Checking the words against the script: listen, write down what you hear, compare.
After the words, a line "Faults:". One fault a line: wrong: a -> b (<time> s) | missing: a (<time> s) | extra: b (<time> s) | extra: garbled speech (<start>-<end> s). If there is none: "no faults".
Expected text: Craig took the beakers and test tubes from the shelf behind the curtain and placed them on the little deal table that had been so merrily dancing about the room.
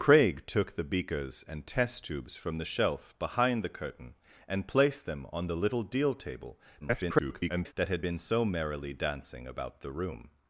Craig took the beakers and test tubes from the shelf behind the curtain and placed them on the little deal table [garbled] that had been so merrily dancing about the room.
Faults:
extra: garbled speech (6.8-7.7 s)